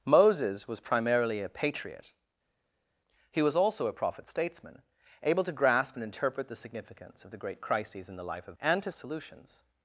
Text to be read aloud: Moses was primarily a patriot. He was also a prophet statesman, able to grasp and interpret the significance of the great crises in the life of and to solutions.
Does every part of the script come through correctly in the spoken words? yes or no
yes